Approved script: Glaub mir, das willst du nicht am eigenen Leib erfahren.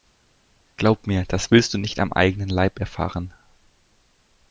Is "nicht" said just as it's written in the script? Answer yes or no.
yes